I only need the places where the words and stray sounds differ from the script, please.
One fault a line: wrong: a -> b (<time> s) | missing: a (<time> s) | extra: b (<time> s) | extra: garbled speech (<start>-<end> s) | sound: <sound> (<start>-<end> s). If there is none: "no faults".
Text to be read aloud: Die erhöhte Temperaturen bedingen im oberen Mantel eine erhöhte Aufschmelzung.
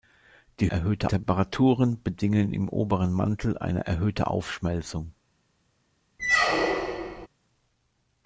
sound: squeak (6.2-7.3 s)